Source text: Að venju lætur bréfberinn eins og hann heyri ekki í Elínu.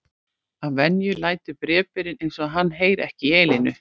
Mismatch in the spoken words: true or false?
false